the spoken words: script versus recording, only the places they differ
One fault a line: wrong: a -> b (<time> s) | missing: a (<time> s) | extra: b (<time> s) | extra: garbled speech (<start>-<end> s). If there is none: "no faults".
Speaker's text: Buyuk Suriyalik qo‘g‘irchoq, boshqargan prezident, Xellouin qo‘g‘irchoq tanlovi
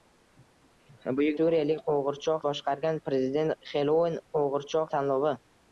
no faults